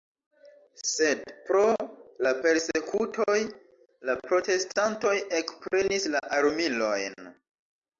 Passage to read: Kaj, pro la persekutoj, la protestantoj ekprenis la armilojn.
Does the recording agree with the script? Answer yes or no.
no